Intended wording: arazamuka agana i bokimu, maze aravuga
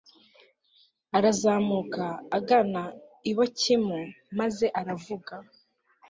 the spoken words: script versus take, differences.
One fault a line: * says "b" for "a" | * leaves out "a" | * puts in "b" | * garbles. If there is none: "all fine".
all fine